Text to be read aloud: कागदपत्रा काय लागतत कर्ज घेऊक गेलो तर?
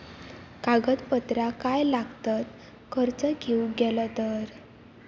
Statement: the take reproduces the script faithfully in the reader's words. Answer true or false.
true